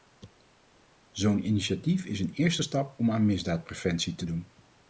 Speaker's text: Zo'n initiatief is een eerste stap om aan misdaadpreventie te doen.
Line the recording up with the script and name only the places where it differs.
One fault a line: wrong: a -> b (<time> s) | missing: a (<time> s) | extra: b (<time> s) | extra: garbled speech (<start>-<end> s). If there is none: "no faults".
no faults